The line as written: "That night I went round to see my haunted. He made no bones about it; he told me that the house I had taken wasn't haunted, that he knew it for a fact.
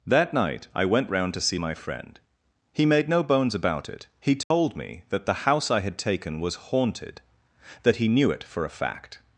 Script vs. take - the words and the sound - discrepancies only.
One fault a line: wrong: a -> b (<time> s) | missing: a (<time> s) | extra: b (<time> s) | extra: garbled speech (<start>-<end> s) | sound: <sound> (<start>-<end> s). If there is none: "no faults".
wrong: haunted -> friend (1.7 s)
sound: dropout (4.4-4.5 s)
wrong: wasn't -> was (6.4 s)